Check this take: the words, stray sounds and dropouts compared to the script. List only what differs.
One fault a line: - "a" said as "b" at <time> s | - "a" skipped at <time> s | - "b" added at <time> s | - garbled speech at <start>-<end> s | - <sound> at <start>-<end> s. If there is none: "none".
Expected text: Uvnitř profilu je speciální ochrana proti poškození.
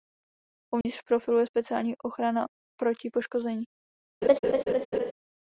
- dropout at 0.8-0.9 s
- laugh at 4.2-5.1 s